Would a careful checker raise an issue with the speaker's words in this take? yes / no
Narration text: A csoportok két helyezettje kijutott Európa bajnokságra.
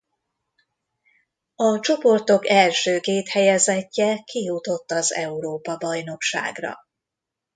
yes